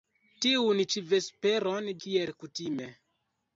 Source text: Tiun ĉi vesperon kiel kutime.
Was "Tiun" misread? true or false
false